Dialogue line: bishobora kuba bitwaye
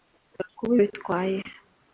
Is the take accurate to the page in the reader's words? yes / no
yes